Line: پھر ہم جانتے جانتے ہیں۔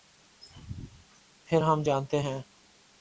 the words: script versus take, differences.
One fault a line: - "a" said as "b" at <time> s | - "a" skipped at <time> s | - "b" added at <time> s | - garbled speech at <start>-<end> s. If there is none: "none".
- "جانتے" skipped at 2.2 s